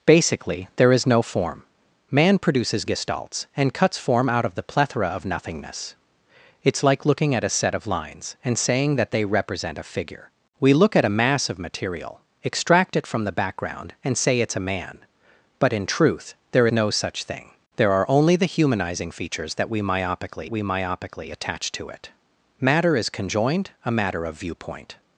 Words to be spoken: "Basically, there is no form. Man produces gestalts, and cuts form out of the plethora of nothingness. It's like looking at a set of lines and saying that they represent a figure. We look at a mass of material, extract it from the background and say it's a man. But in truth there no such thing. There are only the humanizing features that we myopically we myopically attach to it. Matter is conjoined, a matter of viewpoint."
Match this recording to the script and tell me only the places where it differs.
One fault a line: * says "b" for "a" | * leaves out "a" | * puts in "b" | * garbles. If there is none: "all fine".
all fine